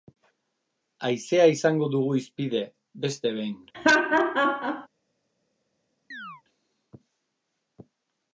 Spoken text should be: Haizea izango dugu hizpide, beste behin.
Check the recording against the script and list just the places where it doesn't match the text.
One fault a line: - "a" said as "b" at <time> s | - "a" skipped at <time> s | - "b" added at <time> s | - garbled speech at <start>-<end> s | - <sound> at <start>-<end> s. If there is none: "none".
- laugh at 3.7-4.9 s
- chirp at 6.1-6.4 s